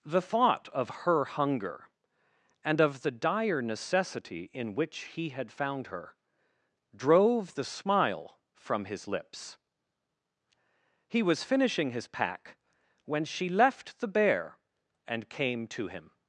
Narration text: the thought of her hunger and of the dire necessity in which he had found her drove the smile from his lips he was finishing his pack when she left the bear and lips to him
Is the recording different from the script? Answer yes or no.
yes